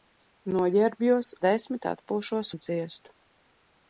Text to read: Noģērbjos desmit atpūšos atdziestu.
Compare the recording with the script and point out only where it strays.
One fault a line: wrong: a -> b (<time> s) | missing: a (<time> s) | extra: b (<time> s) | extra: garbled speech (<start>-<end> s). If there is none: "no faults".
no faults